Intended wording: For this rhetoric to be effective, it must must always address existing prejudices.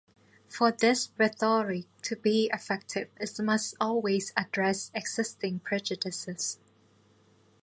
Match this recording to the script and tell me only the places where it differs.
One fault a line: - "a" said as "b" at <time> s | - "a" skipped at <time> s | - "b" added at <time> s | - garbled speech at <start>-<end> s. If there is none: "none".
- "must" skipped at 3.8 s